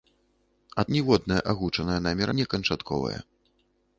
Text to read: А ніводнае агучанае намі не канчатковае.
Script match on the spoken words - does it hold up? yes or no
yes